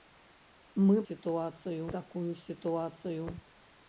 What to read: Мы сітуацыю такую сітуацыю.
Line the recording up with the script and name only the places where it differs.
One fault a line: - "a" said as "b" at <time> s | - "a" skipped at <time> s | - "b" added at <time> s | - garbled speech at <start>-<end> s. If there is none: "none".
none